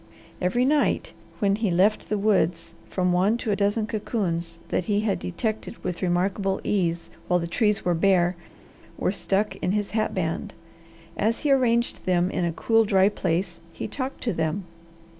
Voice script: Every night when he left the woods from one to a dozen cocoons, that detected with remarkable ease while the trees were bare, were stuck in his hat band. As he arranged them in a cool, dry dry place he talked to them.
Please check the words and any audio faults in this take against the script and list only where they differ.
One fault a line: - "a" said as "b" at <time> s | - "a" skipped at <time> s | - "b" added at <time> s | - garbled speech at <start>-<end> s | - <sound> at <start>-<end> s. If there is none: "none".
- "he had" added at 4.8 s
- "dry" skipped at 13.1 s